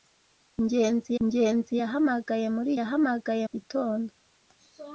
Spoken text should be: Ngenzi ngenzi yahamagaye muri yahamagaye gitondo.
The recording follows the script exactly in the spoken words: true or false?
true